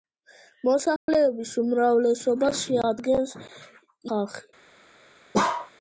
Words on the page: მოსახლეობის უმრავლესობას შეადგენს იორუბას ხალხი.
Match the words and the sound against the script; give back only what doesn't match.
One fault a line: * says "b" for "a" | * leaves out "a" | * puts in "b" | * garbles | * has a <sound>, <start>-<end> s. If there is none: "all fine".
* has a dropout, 1.0-1.1 s
* leaves out "იორუბას"
* has a bark, 5.3-5.7 s